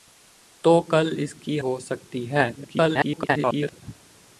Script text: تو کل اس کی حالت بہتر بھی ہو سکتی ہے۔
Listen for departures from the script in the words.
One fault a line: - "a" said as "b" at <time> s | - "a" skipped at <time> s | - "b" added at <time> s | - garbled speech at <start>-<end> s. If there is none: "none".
- "حالت بہتر بھی" skipped at 1.6 s
- garbled speech at 2.6-3.8 s